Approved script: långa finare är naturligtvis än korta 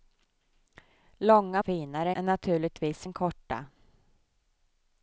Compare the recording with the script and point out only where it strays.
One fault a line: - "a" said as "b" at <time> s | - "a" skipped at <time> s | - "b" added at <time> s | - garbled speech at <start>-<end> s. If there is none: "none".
none